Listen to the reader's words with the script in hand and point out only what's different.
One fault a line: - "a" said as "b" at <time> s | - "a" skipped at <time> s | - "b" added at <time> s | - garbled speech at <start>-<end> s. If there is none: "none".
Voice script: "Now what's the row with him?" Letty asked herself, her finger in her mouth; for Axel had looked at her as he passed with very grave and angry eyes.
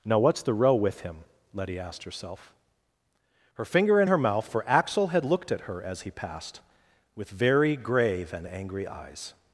none